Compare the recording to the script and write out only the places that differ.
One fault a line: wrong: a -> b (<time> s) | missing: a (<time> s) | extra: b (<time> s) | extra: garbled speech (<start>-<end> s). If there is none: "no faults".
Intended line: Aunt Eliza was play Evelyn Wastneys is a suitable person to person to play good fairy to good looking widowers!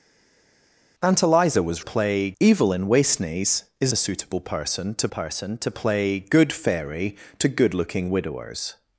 no faults